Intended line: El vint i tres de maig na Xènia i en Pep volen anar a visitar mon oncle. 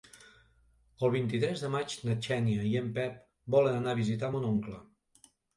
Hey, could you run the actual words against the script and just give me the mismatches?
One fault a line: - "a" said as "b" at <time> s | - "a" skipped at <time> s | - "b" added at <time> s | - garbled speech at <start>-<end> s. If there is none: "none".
none